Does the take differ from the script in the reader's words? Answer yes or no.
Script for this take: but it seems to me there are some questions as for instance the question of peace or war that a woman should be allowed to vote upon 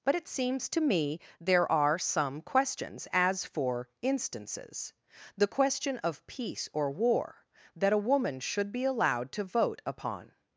yes